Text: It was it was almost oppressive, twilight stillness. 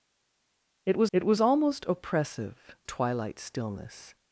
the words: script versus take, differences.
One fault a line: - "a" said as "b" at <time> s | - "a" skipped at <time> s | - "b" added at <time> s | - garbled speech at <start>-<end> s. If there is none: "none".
none